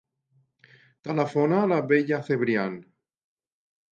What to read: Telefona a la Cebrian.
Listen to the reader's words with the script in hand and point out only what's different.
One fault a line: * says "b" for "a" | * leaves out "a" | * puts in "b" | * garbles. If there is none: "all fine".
* puts in "Bella"